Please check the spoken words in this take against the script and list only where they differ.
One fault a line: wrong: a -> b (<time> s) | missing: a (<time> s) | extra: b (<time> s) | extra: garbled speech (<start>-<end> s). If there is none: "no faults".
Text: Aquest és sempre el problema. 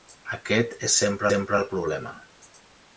extra: sempre (1.3 s)